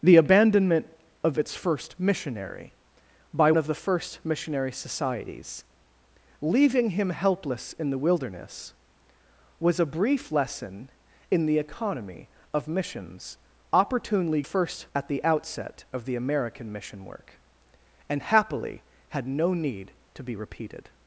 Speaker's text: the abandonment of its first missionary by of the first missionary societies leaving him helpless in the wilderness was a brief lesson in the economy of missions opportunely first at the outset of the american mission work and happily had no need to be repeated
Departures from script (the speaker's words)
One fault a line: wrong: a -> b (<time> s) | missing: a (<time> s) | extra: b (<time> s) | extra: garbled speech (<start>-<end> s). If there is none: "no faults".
no faults